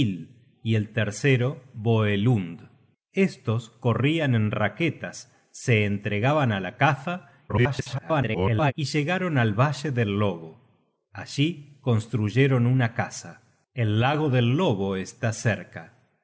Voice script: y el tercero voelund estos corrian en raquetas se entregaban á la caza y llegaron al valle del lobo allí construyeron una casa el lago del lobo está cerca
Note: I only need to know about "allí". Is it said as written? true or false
true